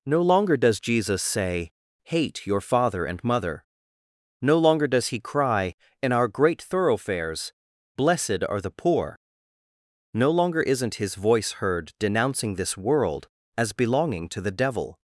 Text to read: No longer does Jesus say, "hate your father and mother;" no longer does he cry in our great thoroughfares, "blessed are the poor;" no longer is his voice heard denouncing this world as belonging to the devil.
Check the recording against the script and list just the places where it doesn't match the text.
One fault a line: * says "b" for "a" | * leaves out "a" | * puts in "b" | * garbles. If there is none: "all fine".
* says "isn't" for "is"